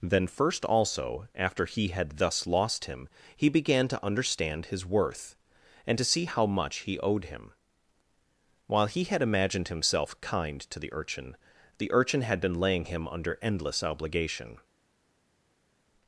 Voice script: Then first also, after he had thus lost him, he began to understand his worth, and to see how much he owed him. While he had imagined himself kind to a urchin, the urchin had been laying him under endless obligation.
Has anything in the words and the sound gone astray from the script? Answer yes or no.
yes